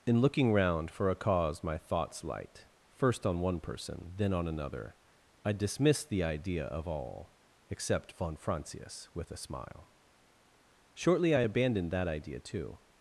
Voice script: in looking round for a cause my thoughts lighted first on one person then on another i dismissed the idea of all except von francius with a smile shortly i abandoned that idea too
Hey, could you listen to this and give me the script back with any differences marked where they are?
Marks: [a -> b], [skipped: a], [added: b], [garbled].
in looking round for a cause my thoughts [lighted -> light] first on one person then on another i dismissed the idea of all except von francius with a smile shortly i abandoned that idea too